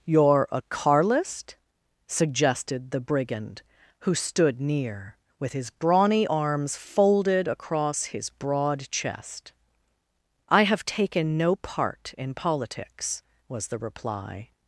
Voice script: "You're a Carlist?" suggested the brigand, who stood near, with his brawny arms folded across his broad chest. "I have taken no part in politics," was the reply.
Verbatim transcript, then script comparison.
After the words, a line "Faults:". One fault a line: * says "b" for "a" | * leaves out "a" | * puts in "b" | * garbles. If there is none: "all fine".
"You're a Carlist?" suggested the brigand, who stood near, with his brawny arms folded across his broad chest. "I have taken no part in politics," was the reply.
Faults:
all fine